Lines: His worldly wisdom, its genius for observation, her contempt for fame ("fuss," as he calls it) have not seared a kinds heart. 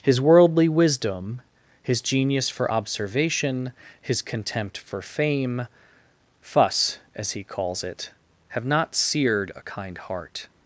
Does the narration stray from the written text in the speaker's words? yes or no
yes